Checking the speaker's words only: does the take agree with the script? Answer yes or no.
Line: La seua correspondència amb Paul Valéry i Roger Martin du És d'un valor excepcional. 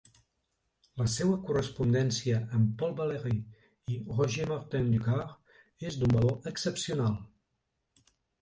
no